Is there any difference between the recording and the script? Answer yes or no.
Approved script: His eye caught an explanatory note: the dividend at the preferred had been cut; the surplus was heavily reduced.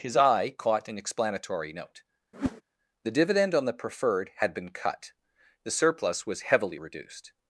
yes